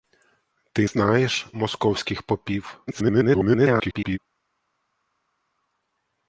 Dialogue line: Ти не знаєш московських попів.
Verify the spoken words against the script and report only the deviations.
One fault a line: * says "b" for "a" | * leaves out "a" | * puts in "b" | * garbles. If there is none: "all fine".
* leaves out "не"
* garbles